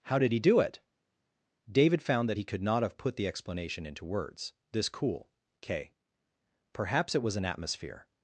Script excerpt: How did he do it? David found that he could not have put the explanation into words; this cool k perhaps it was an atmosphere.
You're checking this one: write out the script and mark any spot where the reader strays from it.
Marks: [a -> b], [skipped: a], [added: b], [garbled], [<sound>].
How did he do it? David found that he could not have put the explanation into words; this cool k perhaps it was an atmosphere.